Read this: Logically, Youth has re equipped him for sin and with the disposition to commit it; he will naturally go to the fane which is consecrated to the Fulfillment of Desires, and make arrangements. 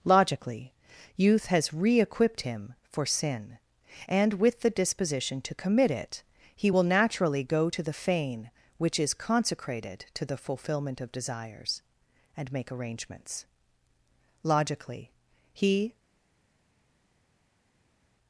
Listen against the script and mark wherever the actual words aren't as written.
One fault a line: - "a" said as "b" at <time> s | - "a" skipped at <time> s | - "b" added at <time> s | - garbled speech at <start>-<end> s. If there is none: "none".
- "Logically he" added at 14.4 s